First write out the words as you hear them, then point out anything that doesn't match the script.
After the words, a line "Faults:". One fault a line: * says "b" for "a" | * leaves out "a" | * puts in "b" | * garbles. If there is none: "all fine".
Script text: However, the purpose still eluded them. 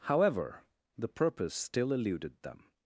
However, the purpose still eluded them.
Faults:
all fine